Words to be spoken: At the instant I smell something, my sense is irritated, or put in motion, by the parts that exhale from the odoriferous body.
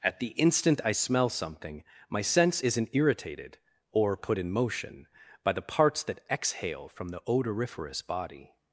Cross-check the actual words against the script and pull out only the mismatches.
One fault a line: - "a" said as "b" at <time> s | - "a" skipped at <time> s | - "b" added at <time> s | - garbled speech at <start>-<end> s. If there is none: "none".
- "is" said as "isn't" at 2.6 s